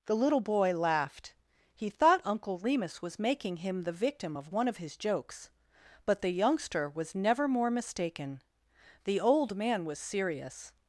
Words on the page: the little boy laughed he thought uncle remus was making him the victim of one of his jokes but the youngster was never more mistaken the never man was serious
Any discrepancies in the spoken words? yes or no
yes